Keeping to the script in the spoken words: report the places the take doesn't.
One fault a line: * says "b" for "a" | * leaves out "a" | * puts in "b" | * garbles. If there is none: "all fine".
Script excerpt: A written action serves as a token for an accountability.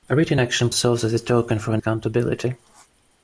all fine